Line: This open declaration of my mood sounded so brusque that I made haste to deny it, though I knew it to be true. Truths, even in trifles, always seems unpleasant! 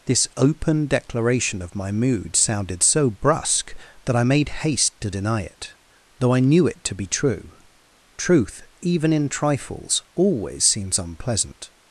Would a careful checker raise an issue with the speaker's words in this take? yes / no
yes